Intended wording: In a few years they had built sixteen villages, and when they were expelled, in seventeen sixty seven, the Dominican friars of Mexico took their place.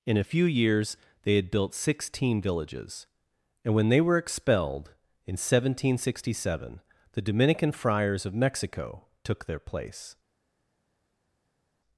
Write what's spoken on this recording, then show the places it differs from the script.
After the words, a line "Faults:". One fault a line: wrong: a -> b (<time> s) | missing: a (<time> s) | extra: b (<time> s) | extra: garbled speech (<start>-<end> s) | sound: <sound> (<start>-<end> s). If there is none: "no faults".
In a few years they had built sixteen villages, and when they were expelled, in seventeen sixty seven, the Dominican friars of Mexico took their place.
Faults:
no faults